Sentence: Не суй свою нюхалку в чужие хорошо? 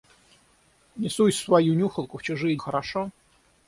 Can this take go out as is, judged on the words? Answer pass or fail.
pass